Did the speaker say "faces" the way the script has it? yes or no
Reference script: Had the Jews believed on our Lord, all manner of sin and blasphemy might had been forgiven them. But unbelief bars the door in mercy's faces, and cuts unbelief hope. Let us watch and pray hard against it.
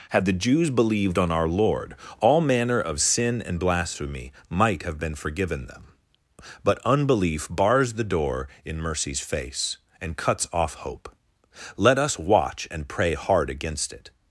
no